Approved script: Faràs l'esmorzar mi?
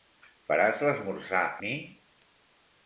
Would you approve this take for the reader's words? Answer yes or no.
yes